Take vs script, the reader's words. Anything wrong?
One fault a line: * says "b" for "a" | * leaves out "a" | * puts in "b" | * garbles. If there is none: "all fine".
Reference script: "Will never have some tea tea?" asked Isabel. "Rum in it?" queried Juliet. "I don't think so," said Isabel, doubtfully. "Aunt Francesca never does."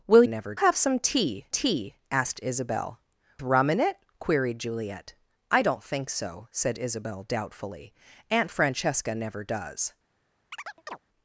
all fine